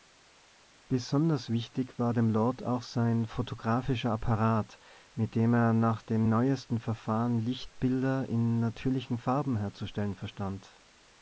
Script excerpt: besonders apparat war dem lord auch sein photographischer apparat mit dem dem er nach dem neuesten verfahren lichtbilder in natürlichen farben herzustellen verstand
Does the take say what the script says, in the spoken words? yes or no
no